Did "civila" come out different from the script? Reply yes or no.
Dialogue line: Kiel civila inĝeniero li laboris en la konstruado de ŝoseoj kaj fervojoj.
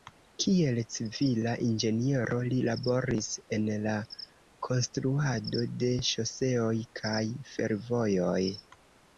no